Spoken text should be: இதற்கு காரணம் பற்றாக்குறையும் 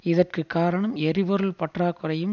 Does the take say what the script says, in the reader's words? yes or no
no